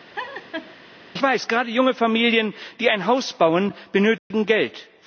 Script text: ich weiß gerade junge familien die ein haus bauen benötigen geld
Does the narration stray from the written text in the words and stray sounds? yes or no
yes